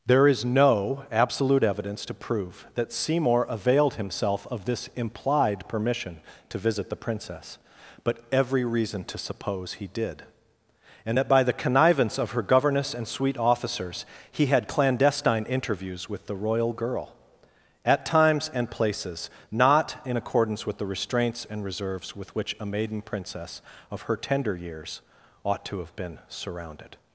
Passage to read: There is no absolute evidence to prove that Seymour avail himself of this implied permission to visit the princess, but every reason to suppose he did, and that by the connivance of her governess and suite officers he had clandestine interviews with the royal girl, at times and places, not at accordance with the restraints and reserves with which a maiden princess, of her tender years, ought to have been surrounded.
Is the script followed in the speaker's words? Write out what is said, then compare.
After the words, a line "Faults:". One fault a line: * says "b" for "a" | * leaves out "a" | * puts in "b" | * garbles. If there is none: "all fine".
There is no absolute evidence to prove that Seymour availed himself of this implied permission to visit the princess, but every reason to suppose he did, and that by the connivance of her governess and suite officers he had clandestine interviews with the royal girl, at times and places, not in accordance with the restraints and reserves with which a maiden princess, of her tender years, ought to have been surrounded.
Faults:
* says "availed" for "avail"
* says "in" for "at"